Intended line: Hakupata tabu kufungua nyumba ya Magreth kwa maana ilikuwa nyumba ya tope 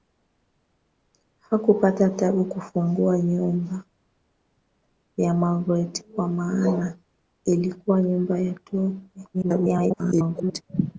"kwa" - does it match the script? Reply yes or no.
yes